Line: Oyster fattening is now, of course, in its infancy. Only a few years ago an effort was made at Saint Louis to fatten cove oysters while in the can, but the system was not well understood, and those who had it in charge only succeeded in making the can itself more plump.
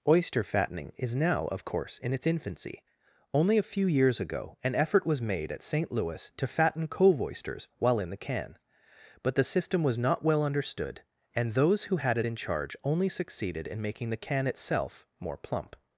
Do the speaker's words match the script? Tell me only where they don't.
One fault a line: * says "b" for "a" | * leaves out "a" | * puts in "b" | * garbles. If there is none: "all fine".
all fine